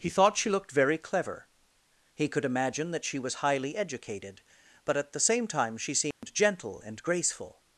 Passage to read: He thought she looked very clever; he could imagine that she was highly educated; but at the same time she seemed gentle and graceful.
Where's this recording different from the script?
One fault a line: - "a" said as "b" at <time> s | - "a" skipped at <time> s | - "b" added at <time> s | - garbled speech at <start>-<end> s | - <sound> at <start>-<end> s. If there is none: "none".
- dropout at 6.1-6.2 s